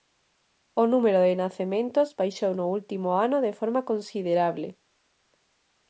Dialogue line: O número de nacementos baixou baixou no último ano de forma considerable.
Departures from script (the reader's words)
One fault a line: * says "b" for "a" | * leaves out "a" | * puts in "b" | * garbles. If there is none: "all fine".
* leaves out "baixou"